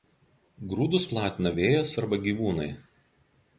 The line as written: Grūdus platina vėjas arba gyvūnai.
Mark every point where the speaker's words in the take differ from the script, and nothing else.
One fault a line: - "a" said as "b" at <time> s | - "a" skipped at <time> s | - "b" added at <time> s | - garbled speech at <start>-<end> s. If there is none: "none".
none